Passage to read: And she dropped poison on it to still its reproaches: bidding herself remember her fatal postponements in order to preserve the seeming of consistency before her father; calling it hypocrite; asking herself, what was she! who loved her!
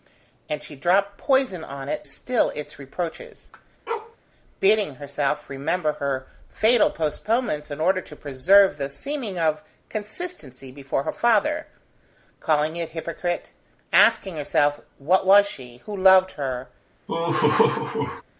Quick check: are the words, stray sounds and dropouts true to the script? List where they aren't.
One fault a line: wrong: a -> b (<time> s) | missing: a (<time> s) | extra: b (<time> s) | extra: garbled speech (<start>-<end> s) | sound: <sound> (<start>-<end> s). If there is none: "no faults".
missing: to (2.1 s)
sound: bark (3.9-4.2 s)
sound: laugh (17.1-18.2 s)